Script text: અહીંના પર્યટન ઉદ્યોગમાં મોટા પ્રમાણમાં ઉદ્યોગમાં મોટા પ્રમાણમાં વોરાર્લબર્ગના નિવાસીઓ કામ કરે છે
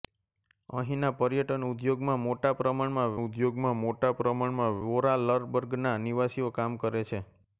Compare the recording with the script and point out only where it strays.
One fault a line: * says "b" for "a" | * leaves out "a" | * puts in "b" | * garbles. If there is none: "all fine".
all fine